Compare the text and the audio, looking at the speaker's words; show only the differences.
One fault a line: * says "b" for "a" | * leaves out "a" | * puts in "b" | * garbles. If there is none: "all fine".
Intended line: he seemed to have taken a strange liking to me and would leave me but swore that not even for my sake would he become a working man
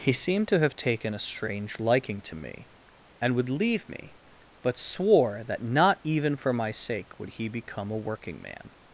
all fine